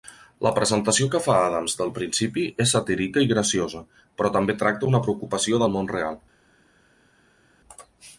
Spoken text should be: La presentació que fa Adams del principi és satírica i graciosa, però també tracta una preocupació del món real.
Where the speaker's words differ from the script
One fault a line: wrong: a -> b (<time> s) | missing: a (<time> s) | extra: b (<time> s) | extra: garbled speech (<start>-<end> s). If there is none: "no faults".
no faults